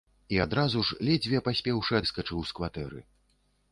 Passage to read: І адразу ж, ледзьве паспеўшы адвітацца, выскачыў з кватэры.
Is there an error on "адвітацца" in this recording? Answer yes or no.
yes